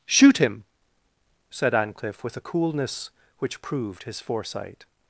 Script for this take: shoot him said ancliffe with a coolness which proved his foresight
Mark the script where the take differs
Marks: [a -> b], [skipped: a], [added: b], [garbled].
shoot him said ancliffe with a coolness which proved his foresight